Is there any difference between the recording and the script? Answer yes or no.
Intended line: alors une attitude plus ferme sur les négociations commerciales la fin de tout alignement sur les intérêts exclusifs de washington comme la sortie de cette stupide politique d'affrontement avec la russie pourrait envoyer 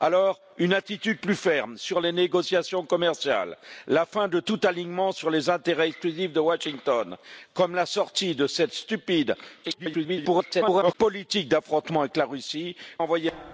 yes